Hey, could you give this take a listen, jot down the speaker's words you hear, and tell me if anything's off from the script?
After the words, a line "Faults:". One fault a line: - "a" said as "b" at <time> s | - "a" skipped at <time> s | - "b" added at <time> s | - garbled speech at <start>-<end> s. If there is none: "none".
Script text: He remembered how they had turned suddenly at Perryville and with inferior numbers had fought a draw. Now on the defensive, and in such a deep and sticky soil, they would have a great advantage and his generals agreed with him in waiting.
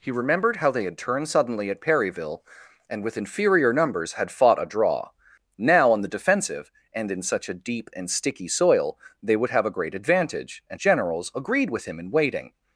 He remembered how they had turned suddenly at Perryville and with inferior numbers had fought a draw. Now on the defensive, and in such a deep and sticky soil, they would have a great advantage and generals agreed with him in waiting.
Faults:
- "his" skipped at 10.8 s